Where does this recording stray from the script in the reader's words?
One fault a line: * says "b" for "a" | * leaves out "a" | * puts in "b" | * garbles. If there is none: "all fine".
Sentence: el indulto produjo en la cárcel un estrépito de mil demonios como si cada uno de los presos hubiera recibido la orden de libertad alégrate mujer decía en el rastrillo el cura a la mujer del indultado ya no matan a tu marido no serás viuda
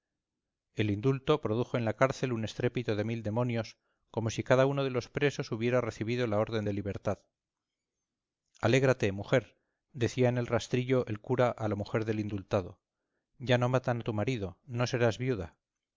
all fine